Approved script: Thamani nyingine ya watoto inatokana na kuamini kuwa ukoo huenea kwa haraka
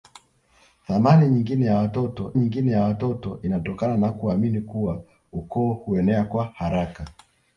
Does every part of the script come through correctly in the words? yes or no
no